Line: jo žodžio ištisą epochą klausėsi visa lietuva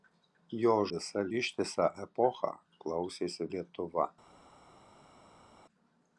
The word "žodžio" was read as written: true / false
false